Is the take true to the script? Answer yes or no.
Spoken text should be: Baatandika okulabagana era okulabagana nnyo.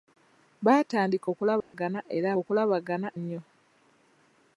yes